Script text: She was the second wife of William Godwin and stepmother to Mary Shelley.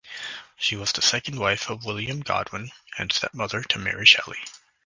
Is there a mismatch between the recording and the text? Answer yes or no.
no